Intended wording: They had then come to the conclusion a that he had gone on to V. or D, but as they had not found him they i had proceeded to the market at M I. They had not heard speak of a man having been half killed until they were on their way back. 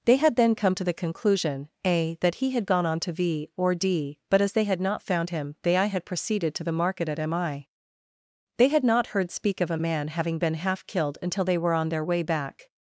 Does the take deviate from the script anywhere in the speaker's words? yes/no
no